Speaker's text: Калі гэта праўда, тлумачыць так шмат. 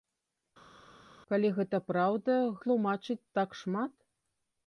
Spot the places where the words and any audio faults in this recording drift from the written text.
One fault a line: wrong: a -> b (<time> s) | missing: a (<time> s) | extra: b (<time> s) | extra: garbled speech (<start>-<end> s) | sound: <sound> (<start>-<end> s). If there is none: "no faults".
no faults